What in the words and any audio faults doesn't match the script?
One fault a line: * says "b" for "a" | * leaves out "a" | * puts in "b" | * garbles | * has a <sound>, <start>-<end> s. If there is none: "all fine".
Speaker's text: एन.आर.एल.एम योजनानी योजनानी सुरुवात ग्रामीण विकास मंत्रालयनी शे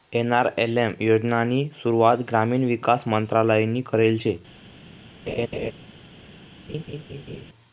* leaves out "योजनानी"
* puts in "करेल"
* has a laugh, 5.3-5.7 s
* has a laugh, 6.7-7.5 s